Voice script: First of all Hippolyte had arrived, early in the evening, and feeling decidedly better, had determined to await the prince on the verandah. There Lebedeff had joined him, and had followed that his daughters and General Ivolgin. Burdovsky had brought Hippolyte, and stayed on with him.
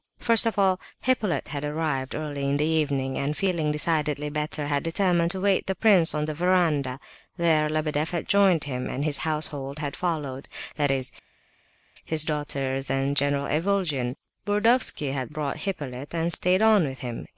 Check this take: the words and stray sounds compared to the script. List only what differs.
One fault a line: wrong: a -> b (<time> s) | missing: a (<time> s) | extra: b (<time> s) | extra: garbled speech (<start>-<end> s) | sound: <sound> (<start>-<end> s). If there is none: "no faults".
extra: his household (9.0 s)
extra: is (10.9 s)